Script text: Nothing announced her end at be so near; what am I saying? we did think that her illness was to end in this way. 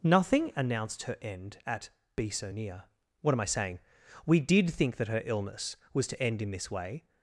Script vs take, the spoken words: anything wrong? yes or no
no